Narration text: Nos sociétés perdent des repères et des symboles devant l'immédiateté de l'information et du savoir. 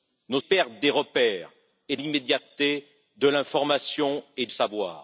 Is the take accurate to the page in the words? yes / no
no